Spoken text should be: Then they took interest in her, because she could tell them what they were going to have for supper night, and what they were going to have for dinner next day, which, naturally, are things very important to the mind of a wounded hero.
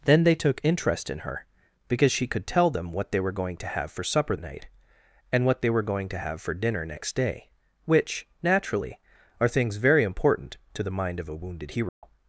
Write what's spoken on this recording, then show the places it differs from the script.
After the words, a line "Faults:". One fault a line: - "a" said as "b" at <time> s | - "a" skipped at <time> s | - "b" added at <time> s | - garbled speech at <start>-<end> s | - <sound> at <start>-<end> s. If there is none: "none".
Then they took interest in her, because she could tell them what they were going to have for supper night, and what they were going to have for dinner next day, which, naturally, are things very important to the mind of a wounded hero.
Faults:
- dropout at 11.9-12.0 s